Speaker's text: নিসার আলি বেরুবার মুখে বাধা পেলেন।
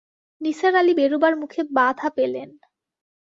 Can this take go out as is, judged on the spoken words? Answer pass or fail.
pass